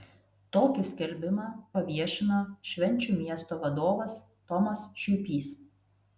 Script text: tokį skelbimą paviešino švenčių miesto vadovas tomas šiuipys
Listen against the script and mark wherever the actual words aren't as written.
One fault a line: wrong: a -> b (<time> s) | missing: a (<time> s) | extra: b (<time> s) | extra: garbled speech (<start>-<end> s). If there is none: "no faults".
no faults